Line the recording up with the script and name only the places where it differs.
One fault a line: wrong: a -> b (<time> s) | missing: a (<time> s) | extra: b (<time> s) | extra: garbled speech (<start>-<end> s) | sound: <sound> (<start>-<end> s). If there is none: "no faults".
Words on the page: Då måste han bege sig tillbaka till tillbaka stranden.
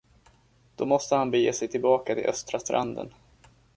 wrong: tillbaka -> östra (2.2 s)